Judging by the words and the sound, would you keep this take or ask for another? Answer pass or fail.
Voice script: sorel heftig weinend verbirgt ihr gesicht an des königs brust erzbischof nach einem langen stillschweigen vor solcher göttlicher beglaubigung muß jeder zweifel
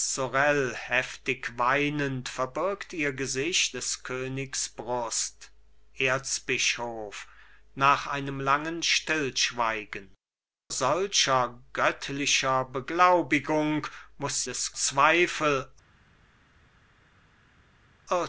fail